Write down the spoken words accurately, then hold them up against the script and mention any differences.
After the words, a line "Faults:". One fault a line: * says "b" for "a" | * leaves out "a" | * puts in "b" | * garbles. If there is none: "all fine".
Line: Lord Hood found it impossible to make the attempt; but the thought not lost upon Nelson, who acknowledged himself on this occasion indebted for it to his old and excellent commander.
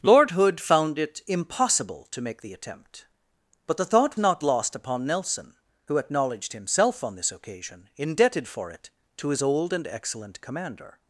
Lord Hood found it impossible to make the attempt; but the thought not lost upon Nelson, who acknowledged himself on this occasion indebted for it to his old and excellent commander.
Faults:
all fine